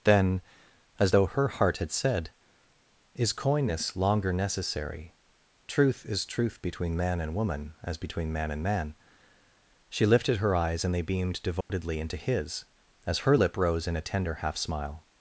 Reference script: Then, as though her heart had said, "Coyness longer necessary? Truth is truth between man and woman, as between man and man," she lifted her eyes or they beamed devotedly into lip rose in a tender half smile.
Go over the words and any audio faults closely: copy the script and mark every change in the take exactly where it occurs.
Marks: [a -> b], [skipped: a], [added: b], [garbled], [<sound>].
Then, as though her heart had said, [added: Is] "Coyness longer necessary? Truth is truth between man and woman, as between man and man," she lifted her eyes [or -> and] they beamed devotedly [dropout] into [added: his as her] lip rose in a tender half smile.